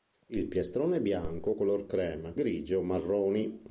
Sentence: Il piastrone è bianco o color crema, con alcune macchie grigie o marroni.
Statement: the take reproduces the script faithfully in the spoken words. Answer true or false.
false